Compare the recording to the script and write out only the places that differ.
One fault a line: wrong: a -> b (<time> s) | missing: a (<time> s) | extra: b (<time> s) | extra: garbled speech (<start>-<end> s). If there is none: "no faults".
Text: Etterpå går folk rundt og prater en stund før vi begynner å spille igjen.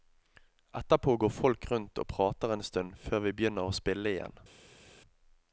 no faults